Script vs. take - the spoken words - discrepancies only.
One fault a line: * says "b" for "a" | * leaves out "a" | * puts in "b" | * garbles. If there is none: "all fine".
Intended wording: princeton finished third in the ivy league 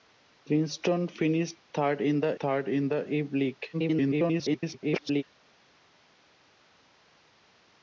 * puts in "third in the"
* garbles